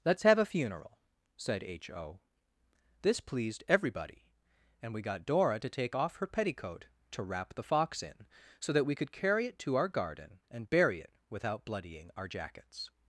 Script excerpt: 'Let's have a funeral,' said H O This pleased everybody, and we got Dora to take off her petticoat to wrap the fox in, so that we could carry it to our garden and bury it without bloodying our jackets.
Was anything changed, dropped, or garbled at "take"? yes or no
no